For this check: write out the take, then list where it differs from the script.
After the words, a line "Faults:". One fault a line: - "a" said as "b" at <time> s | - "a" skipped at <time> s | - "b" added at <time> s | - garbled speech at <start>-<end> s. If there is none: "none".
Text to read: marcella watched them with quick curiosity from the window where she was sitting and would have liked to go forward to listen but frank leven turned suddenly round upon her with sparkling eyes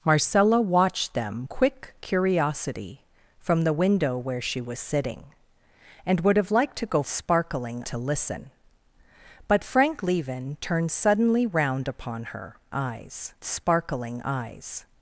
marcella watched them quick curiosity from the window where she was sitting and would have liked to go sparkling to listen but frank leven turned suddenly round upon her eyes sparkling eyes
Faults:
- "with" skipped at 1.5 s
- "forward" said as "sparkling" at 7.1 s
- "with" said as "eyes" at 12.7 s